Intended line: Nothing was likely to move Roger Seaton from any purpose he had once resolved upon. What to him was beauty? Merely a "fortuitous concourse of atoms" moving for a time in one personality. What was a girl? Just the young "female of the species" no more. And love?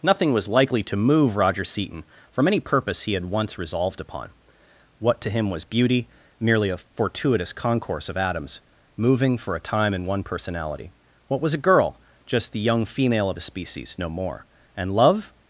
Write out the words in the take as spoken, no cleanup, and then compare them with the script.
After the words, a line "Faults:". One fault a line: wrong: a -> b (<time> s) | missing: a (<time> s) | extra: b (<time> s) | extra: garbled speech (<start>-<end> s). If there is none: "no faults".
Nothing was likely to move Roger Seaton from any purpose he had once resolved upon. What to him was beauty? Merely a "fortuitous concourse of atoms" moving for a time in one personality. What was a girl? Just the young "female of the species" no more. And love?
Faults:
no faults